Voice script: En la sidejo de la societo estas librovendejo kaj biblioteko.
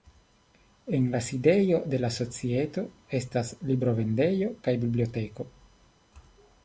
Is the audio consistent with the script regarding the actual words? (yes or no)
yes